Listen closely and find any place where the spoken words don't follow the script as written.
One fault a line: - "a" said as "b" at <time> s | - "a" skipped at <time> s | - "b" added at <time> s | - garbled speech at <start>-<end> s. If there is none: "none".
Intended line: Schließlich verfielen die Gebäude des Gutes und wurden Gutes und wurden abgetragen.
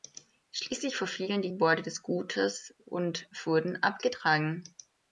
- "Gutes und wurden" skipped at 3.8 s